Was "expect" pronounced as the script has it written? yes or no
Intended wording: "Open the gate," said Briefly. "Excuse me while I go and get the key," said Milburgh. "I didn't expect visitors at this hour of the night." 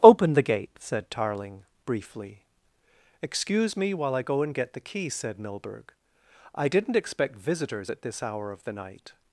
yes